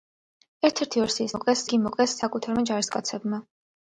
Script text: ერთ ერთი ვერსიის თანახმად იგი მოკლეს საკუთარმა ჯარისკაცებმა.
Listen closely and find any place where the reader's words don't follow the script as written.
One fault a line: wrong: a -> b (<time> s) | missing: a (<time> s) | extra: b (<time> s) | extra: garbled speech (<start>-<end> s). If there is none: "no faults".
wrong: თანახმად -> მოკლეს (1.4 s)